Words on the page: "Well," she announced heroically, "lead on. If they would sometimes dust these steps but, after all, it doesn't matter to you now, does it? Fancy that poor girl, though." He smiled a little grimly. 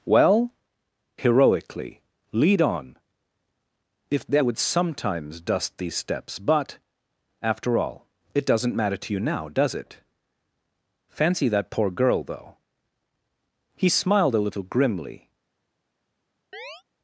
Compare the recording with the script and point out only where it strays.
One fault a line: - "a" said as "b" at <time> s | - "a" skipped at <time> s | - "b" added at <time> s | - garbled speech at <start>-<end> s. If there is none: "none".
- "she announced" skipped at 0.5 s